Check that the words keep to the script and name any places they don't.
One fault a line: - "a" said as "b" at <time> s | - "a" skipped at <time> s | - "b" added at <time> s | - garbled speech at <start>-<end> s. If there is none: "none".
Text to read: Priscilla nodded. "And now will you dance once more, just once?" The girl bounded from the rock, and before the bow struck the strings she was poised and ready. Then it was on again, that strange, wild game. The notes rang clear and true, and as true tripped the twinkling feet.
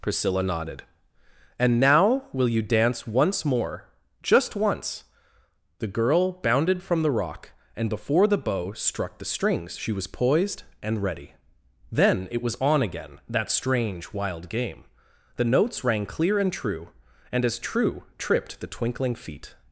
none